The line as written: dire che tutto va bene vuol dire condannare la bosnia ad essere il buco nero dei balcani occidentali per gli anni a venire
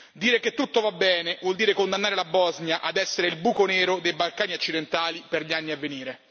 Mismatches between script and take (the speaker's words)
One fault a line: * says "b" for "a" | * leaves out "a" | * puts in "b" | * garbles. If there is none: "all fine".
all fine